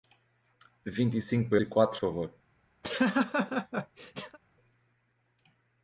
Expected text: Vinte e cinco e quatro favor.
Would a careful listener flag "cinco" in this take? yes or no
no